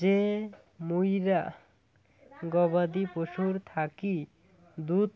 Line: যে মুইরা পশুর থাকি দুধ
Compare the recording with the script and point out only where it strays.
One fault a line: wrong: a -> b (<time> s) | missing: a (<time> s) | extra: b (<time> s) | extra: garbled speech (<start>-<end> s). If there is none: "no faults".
extra: গবাদি (2.5 s)